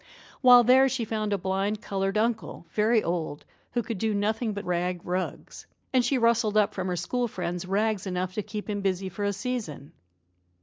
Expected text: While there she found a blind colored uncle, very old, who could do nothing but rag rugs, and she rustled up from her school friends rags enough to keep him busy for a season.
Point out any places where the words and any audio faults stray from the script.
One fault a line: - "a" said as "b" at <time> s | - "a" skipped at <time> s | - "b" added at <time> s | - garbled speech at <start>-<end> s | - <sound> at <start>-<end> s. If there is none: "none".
none